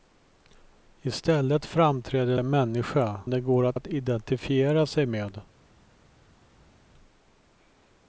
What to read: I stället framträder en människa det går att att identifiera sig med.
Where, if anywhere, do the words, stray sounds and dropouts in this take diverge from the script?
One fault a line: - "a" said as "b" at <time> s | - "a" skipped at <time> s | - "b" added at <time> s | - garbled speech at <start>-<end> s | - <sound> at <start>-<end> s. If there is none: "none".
none